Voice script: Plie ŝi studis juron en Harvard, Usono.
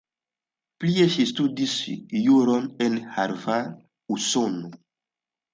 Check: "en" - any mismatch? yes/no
no